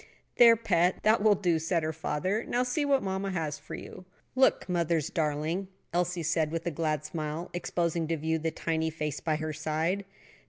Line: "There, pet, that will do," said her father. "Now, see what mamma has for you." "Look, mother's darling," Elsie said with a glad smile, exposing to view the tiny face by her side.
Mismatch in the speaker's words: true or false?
false